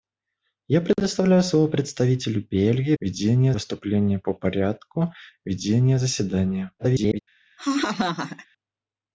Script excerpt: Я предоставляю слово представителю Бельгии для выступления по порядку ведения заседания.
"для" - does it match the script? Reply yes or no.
no